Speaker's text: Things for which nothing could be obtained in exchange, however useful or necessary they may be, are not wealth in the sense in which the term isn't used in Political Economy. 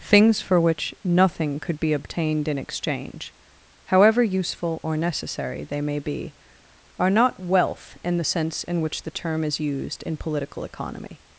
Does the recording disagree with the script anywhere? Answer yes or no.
yes